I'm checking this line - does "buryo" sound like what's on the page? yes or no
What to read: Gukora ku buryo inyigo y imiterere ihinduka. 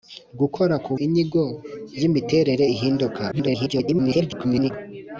no